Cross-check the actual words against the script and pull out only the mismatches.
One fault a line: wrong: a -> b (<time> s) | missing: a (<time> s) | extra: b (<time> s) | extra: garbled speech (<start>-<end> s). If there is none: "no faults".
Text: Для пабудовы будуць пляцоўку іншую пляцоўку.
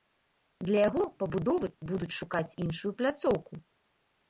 extra: яго (0.9 s)
wrong: пляцоўку -> шукаць (2.2 s)